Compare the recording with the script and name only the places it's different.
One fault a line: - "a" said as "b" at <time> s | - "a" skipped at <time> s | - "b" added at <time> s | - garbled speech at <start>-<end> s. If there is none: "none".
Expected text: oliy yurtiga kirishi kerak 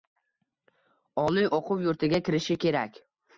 - "o‘quv" added at 1.6 s